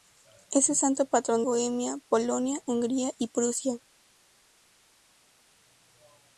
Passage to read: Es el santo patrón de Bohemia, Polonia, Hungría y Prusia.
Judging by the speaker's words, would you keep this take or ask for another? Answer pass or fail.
fail